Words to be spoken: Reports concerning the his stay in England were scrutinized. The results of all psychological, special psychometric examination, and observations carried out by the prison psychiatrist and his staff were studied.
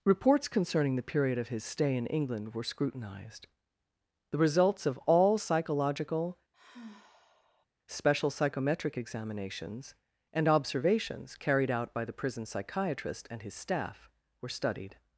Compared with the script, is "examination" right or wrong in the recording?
wrong